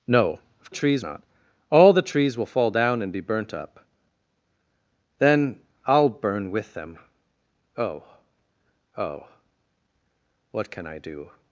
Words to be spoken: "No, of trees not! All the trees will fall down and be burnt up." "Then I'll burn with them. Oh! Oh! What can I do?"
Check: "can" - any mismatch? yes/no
no